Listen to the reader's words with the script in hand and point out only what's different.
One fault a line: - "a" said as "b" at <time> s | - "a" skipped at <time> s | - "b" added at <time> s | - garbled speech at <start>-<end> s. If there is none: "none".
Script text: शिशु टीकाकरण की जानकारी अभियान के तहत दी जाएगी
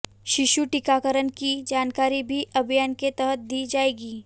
- "भी" added at 2.2 s